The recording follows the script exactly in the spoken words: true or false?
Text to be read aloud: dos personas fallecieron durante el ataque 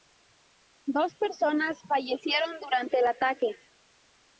true